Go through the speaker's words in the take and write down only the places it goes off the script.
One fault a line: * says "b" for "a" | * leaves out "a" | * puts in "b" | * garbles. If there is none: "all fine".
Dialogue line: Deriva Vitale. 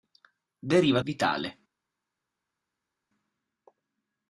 all fine